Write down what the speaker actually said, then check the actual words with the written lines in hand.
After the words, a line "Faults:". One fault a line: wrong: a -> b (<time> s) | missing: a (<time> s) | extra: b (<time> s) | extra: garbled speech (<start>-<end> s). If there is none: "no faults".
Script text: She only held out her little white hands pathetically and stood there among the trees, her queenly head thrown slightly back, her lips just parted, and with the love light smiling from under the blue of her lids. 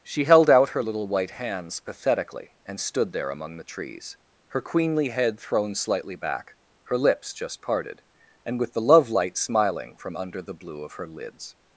She held out her little white hands pathetically and stood there among the trees, her queenly head thrown slightly back, her lips just parted, and with the love light smiling from under the blue of her lids.
Faults:
missing: only (0.2 s)